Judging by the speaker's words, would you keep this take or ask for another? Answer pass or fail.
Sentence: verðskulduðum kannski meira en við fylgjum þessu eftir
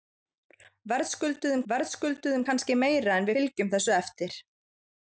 fail